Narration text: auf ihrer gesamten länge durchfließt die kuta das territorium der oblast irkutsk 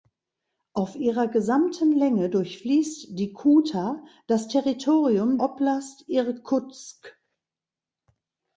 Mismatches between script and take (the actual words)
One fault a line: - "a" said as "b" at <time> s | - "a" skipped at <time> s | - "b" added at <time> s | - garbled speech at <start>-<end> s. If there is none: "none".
- "der" skipped at 5.4 s